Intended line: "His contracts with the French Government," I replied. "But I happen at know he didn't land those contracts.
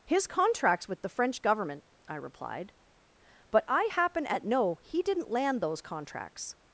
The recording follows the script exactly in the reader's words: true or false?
true